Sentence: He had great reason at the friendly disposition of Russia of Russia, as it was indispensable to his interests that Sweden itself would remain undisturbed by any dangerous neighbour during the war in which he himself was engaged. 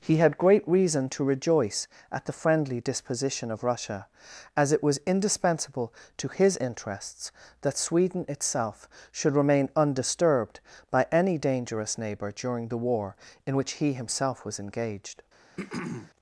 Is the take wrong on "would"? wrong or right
wrong